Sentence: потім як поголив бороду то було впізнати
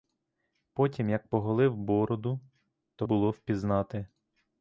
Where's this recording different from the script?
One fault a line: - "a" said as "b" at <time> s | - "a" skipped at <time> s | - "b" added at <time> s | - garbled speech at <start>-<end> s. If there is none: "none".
none